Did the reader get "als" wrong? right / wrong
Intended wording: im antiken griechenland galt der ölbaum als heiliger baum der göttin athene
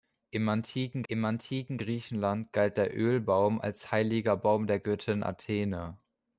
right